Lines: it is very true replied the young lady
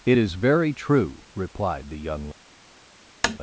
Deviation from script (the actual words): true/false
false